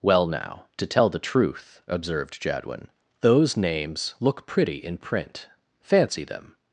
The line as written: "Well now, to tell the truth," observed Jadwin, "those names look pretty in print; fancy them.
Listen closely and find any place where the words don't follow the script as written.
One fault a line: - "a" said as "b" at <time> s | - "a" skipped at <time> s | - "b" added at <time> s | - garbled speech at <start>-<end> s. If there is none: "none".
none